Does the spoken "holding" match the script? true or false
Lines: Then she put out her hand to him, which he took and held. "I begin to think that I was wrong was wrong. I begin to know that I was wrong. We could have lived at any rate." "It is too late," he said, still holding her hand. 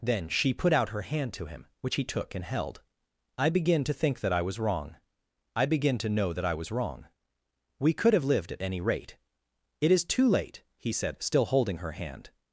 true